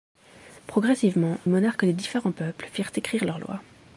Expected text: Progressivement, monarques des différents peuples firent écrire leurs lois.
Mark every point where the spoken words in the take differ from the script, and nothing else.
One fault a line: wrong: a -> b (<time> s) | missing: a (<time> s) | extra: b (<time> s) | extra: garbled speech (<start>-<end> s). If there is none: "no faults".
no faults